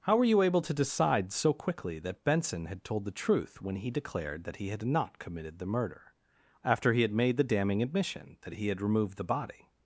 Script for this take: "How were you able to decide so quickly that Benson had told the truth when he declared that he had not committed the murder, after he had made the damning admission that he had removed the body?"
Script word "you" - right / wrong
right